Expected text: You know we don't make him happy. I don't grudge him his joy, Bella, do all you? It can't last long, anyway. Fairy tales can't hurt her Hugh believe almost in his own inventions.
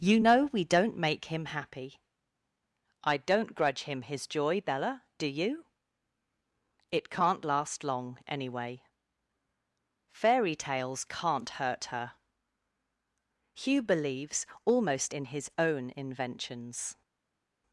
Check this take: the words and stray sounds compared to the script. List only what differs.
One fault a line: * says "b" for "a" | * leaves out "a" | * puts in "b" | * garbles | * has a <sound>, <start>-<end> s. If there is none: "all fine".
* leaves out "all"
* says "believes" for "believe"